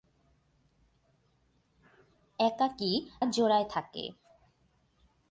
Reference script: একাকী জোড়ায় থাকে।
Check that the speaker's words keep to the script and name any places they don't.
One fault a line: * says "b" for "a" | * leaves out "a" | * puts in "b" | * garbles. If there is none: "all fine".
all fine